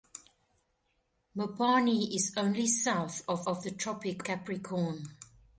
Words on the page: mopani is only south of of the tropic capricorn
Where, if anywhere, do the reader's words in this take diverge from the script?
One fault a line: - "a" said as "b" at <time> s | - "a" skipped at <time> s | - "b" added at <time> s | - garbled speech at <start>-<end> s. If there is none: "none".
none